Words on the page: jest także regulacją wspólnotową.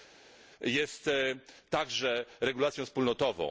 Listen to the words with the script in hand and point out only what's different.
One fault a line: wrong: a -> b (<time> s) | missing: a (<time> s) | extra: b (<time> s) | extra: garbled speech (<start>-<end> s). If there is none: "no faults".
no faults